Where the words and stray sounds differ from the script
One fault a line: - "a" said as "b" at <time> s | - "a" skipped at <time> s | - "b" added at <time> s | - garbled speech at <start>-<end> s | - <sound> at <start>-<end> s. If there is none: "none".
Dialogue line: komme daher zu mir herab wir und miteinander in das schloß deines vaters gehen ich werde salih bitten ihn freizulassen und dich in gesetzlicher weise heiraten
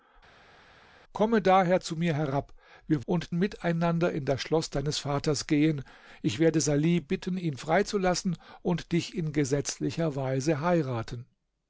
none